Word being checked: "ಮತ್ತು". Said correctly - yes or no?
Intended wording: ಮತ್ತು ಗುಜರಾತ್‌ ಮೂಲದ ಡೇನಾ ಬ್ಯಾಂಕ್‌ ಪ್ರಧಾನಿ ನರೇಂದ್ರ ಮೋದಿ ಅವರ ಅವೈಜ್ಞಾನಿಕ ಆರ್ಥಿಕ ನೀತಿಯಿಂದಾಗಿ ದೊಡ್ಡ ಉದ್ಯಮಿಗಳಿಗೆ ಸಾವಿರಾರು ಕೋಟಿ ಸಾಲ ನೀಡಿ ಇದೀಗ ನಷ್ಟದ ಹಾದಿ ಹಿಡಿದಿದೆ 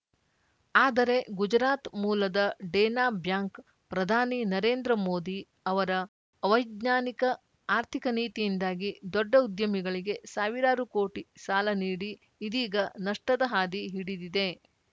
no